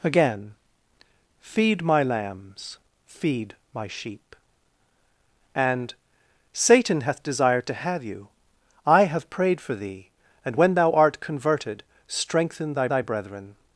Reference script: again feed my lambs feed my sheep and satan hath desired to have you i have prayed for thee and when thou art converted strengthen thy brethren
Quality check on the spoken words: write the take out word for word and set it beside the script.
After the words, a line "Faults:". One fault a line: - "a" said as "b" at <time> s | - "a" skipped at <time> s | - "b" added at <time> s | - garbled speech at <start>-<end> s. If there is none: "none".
again feed my lambs feed my sheep and satan hath desired to have you i have prayed for thee and when thou art converted strengthen thy thy brethren
Faults:
- "thy" added at 12.9 s